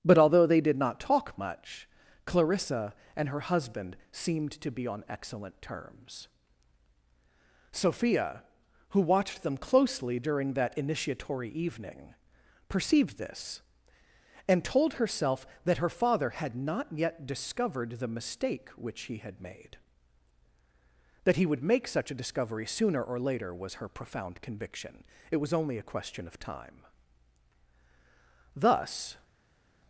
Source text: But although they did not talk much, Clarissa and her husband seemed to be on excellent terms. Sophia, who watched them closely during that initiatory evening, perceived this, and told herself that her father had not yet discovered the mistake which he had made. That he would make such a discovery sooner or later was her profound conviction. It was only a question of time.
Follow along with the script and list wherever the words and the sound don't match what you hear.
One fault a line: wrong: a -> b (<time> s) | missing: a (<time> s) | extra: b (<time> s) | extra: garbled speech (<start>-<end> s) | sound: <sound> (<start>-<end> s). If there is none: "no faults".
extra: Thus (28.6 s)